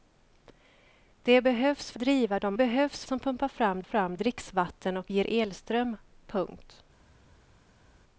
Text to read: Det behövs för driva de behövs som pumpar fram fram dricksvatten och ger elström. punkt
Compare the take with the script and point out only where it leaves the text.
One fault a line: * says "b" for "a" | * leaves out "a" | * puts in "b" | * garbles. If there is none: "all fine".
all fine